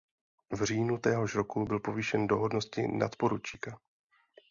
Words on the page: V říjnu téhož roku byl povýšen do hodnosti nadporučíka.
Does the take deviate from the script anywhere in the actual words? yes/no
no